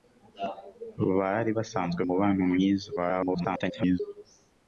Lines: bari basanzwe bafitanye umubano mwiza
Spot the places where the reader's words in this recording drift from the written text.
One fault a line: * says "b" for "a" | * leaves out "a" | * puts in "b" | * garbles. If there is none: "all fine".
* leaves out "bafitanye"
* garbles